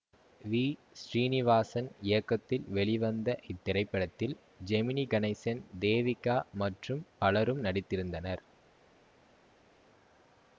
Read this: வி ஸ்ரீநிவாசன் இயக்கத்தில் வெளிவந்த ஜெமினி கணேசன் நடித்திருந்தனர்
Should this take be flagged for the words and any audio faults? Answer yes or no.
yes